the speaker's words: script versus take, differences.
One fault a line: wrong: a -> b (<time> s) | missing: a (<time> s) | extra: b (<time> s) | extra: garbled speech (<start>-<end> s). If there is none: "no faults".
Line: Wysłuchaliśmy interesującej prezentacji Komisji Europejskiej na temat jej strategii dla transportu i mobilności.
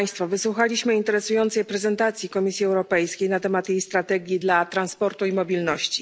no faults